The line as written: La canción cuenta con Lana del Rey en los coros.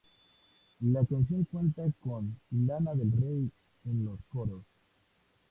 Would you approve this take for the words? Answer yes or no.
yes